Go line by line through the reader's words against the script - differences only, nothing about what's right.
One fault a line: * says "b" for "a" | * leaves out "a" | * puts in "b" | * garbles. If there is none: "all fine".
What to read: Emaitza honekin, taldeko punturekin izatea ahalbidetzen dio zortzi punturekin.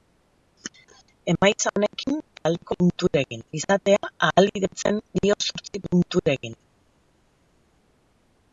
all fine